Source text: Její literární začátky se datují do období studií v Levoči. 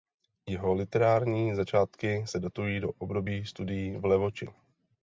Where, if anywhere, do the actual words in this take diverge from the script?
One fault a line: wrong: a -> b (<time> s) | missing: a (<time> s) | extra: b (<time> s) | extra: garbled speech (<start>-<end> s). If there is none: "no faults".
wrong: Její -> Jeho (0.5 s)